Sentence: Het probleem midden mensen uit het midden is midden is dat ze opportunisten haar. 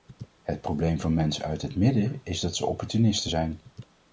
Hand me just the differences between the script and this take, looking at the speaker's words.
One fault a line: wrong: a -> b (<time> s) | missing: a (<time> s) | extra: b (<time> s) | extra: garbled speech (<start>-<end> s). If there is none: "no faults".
wrong: midden -> van (1.0 s)
missing: midden is (2.4 s)
wrong: haar -> zijn (3.3 s)